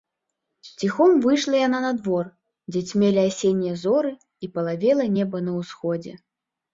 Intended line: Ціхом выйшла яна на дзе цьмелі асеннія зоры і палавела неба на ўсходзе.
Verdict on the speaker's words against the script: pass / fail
fail